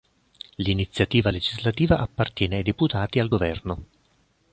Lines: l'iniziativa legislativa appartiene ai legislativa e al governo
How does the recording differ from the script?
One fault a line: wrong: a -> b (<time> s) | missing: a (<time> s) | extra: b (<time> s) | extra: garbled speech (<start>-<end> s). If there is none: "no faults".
wrong: legislativa -> deputati (2.6 s)